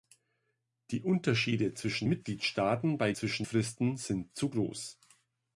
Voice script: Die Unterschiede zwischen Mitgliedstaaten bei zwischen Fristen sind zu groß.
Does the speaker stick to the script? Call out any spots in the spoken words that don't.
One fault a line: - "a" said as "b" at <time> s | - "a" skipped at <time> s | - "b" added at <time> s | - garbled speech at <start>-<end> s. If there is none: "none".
none